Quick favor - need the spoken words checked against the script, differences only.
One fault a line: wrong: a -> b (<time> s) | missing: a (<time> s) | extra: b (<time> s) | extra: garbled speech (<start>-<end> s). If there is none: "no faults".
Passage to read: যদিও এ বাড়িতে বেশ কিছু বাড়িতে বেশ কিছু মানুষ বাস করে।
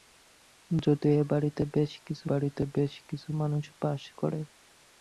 no faults